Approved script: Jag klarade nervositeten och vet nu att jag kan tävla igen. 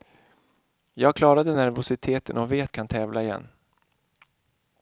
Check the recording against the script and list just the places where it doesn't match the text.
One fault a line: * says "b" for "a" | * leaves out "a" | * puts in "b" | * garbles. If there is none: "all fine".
* leaves out "nu att jag"